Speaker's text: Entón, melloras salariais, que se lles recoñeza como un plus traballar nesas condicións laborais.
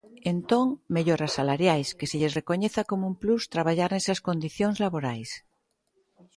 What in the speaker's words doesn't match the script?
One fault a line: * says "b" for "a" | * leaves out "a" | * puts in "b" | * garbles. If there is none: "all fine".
all fine